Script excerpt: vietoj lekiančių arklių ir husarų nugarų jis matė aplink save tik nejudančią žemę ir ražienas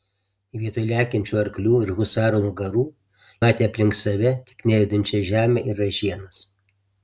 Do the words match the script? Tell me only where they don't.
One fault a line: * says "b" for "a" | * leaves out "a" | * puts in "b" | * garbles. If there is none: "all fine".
* leaves out "jis"